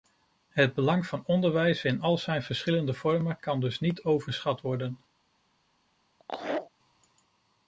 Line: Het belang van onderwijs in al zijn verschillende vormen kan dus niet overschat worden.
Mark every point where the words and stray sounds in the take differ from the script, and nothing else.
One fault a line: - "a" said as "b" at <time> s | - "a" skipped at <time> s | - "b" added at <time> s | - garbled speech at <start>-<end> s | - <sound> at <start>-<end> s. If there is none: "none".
- laugh at 6.2-6.7 s